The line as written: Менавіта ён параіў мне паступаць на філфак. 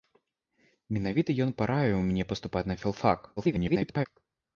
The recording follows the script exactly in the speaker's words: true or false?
false